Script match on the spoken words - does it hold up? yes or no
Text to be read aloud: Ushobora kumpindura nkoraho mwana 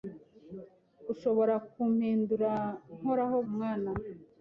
yes